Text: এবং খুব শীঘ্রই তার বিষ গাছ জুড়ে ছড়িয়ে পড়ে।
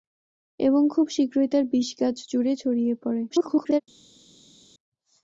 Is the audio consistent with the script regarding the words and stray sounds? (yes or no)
no